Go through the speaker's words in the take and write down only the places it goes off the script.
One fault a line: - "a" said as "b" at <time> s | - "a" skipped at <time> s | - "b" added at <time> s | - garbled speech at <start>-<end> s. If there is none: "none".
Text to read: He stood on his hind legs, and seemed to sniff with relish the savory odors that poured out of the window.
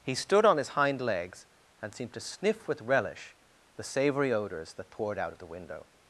none